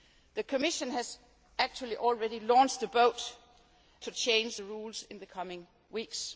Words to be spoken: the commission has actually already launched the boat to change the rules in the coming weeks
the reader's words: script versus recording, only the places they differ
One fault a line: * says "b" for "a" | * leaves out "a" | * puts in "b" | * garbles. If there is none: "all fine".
all fine